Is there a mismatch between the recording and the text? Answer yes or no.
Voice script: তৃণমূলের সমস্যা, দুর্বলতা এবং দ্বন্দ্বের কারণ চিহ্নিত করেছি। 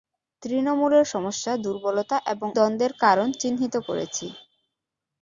no